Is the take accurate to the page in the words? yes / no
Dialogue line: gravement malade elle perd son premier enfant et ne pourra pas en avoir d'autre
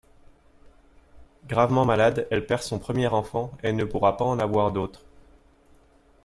yes